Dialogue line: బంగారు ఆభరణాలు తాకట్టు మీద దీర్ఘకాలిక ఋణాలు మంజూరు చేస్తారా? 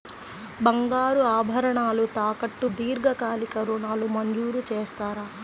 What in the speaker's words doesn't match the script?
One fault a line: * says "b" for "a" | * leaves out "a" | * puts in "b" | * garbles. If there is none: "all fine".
* leaves out "మీద"